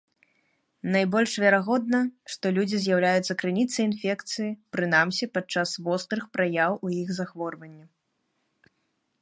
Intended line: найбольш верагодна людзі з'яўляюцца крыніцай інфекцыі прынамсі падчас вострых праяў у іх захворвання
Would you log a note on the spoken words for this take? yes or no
yes